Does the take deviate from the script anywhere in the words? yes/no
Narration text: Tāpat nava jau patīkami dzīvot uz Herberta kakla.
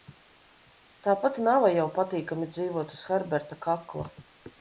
no